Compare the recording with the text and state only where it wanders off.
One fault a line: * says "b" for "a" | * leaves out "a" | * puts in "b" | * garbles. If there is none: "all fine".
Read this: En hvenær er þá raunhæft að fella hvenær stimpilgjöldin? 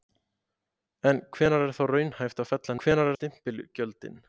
all fine